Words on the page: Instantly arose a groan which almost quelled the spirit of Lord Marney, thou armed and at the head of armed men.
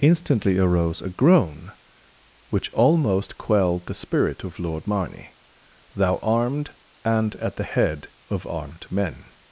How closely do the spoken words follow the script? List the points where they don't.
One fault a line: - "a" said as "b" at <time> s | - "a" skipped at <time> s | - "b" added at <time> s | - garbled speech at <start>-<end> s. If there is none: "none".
none